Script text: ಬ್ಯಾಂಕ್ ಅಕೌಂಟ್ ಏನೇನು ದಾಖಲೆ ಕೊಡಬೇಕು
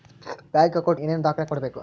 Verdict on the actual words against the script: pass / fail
pass